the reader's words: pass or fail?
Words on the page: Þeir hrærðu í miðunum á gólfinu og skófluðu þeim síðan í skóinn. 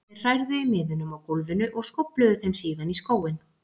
pass